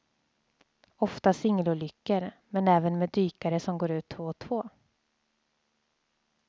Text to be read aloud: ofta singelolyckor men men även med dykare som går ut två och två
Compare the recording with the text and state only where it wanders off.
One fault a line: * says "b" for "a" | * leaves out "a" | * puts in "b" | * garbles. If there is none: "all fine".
* leaves out "men"